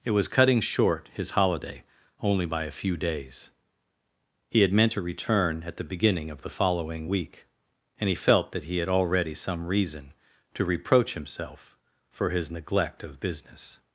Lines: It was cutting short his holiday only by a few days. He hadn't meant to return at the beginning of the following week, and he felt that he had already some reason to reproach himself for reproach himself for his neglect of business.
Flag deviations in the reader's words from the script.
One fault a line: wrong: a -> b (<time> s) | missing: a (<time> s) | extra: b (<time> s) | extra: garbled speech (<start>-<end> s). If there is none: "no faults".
wrong: hadn't -> had (4.6 s)
missing: reproach himself for (12.3 s)